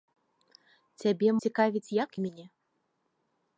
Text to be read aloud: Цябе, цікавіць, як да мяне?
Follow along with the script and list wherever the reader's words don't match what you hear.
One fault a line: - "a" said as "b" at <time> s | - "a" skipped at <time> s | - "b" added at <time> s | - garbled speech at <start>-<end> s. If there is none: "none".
none